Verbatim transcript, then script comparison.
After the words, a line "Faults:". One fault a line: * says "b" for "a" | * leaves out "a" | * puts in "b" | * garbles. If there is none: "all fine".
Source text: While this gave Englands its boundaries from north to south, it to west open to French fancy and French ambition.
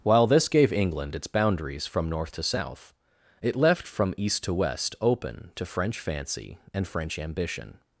While this gave England its boundaries from north to south, it left from east to west open to French fancy and French ambition.
Faults:
* says "England" for "Englands"
* puts in "left from east"